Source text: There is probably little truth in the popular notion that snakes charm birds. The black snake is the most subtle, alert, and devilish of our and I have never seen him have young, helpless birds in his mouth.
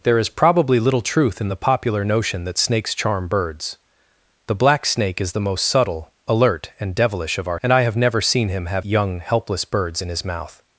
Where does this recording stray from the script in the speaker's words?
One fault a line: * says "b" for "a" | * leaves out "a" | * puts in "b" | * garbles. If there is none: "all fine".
all fine